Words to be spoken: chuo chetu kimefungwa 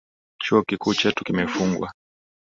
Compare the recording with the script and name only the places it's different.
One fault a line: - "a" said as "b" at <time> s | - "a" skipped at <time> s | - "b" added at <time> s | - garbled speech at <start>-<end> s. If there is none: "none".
- "kikuu" added at 0.6 s